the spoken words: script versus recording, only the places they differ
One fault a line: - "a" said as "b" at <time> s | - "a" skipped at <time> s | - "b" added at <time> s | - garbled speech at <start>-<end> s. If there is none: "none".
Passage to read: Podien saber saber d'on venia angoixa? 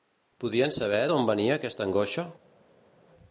- "saber" skipped at 1.0 s
- "aquesta" added at 1.6 s